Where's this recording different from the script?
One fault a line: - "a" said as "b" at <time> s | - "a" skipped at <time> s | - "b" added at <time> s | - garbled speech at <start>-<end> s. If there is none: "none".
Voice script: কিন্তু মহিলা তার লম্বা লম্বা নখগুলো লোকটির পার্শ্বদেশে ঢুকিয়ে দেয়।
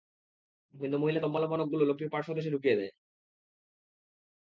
- "তার" skipped at 1.2 s